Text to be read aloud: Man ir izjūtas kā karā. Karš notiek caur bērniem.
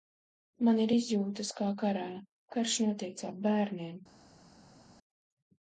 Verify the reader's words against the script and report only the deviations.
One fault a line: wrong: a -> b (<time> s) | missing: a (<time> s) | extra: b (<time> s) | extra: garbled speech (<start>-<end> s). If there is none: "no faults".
no faults